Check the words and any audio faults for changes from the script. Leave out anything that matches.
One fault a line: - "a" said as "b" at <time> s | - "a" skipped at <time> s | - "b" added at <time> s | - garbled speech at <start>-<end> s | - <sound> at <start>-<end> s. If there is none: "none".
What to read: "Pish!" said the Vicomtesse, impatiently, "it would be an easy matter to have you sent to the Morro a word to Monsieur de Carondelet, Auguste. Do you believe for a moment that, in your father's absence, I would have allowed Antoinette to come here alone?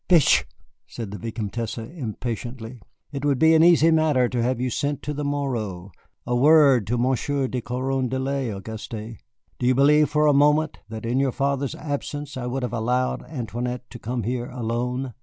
none